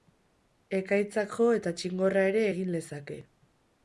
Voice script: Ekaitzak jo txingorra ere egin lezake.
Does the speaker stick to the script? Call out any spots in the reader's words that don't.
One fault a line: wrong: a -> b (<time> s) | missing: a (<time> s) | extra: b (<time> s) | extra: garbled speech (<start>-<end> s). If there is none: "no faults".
extra: eta (1.6 s)